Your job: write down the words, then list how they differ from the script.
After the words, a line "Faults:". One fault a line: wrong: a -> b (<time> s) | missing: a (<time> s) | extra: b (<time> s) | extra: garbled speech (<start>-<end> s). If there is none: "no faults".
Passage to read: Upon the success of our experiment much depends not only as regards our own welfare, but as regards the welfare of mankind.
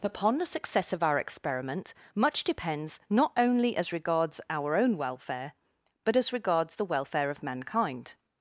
Upon the success of our experiment much depends not only as regards our own welfare, but as regards the welfare of mankind.
Faults:
no faults